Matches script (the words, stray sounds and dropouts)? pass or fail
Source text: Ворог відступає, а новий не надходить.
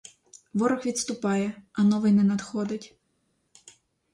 pass